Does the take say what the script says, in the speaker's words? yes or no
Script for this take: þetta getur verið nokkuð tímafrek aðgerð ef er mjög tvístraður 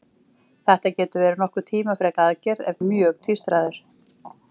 yes